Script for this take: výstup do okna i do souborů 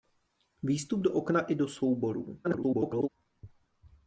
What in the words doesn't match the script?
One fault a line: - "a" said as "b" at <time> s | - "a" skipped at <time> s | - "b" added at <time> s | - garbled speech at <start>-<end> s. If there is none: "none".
- garbled speech at 2.4-3.1 s